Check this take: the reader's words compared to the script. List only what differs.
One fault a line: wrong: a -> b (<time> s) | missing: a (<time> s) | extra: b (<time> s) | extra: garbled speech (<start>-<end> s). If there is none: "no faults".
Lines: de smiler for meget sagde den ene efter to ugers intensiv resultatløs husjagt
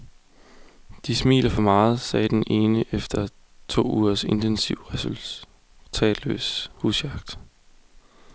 no faults